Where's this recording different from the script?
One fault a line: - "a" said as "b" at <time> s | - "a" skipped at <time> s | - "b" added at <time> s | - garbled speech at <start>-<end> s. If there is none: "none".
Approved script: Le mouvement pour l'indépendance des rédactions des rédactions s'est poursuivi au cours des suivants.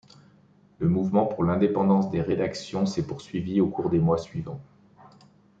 - "des rédactions" skipped at 2.9 s
- "mois" added at 4.0 s